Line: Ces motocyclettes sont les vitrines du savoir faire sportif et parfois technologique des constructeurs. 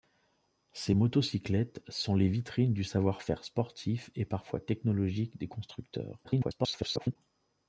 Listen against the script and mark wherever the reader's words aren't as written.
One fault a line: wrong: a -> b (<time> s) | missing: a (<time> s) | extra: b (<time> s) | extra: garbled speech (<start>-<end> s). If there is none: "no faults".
extra: garbled speech (6.2-7.2 s)